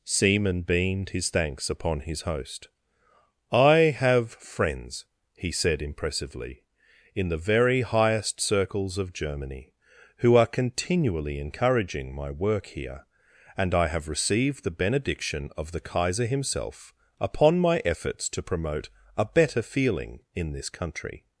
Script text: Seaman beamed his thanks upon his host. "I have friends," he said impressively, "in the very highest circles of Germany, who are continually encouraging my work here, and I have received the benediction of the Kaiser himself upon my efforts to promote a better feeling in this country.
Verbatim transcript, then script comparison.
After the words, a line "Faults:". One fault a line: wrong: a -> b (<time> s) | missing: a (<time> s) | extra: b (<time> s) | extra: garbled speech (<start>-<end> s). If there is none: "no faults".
Seaman beamed his thanks upon his host. "I have friends," he said impressively, "in the very highest circles of Germany, who are continually encouraging my work here, and I have received the benediction of the Kaiser himself upon my efforts to promote a better feeling in this country.
Faults:
no faults